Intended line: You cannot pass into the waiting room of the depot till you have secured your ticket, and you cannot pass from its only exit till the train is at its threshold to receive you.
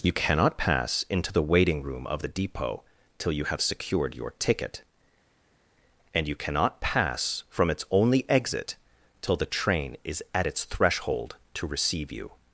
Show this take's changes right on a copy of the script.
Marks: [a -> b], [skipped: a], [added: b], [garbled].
You cannot pass into the waiting room of the depot till you have secured your ticket, and you cannot pass from its only exit till the train is at its threshold to receive you.